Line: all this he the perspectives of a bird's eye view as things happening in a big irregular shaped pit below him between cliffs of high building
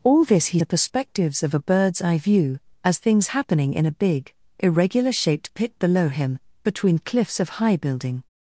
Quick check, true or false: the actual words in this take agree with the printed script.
true